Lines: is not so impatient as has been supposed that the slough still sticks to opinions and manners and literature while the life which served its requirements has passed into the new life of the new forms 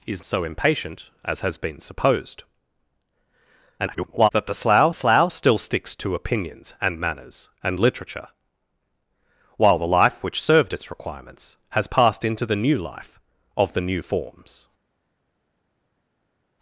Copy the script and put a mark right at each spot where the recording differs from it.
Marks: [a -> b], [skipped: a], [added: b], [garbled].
is [skipped: not] so impatient as has been supposed [garbled] that the slough [added: slough] still sticks to opinions and manners and literature while the life which served its requirements has passed into the new life of the new forms